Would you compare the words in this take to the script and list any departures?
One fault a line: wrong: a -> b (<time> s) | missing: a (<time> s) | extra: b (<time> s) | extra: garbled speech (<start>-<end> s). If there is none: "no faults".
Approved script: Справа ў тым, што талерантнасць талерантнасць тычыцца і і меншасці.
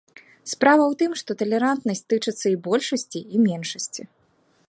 missing: талерантнасць (2.0 s)
extra: большасці (2.7 s)